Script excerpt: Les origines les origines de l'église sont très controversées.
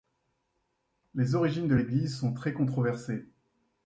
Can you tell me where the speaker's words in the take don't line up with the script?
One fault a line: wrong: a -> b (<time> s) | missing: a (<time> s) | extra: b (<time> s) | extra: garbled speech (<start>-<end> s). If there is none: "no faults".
missing: les origines (1.7 s)